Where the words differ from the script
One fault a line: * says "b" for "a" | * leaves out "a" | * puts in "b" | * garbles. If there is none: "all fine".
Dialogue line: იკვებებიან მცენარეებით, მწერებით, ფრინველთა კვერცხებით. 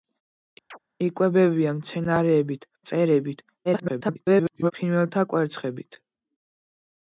* garbles